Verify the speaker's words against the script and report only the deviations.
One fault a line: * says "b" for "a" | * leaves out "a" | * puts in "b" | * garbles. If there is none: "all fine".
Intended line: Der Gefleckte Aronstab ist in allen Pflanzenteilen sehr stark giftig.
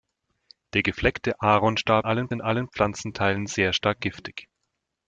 * says "allen" for "ist"